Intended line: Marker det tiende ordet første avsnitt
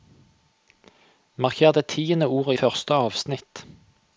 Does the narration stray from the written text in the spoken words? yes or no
no